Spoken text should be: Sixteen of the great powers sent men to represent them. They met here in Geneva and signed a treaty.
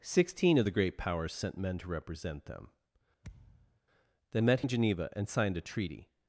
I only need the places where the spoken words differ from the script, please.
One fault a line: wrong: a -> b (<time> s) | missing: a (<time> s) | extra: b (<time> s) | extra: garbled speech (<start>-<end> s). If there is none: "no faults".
missing: here (4.6 s)